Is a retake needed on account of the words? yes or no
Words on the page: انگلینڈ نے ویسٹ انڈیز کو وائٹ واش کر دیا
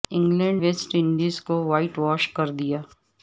yes